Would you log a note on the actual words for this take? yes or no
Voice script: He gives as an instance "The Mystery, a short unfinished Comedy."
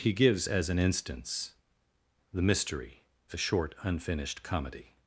no